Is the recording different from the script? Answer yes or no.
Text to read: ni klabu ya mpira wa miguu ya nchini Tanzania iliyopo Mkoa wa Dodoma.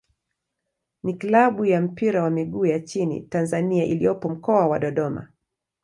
no